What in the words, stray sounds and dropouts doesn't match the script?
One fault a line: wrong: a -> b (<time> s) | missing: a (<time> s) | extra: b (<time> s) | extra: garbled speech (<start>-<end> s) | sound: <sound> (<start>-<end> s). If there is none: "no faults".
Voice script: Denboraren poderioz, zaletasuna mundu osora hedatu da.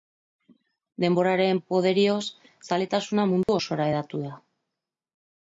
sound: dropout (3.4-3.5 s)